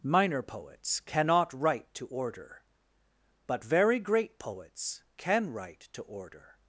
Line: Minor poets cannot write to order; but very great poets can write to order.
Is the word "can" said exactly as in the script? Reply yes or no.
yes